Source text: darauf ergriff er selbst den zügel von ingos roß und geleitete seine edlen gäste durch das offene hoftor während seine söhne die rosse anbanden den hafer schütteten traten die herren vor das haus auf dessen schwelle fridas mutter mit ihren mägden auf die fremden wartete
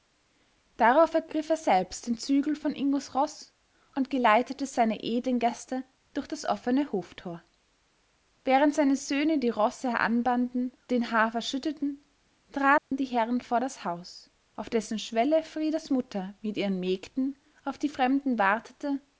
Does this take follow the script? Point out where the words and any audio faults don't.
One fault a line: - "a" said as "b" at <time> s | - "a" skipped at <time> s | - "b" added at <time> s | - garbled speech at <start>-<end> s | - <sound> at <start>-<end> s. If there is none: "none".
- dropout at 12.8-12.9 s